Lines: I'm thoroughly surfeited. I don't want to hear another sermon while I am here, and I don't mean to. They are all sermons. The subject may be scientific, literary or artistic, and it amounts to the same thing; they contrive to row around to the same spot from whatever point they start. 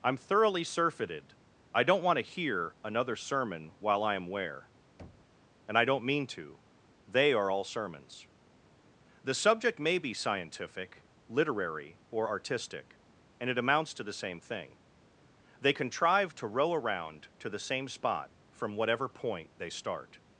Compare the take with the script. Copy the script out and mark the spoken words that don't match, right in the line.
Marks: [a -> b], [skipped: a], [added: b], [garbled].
I'm thoroughly surfeited. I don't want to hear another sermon while I am [here, -> where] and I don't mean to. They are all sermons. The subject may be scientific, literary or artistic, and it amounts to the same thing; they contrive to row around to the same spot from whatever point they start.